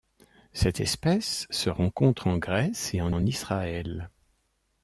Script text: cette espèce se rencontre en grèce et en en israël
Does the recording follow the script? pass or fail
pass